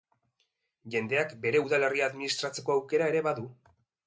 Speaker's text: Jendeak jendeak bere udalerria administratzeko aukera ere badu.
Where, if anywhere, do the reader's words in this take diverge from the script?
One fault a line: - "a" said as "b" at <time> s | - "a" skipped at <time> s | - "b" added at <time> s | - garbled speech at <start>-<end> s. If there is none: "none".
- "jendeak" skipped at 1.4 s